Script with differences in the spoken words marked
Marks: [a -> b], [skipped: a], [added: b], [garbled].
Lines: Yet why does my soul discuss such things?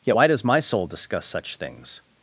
Yet why does my soul discuss such things?